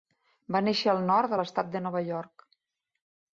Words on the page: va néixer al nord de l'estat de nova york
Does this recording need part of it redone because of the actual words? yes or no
no